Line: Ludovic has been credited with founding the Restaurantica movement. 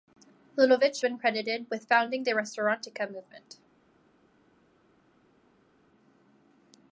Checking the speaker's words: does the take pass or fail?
fail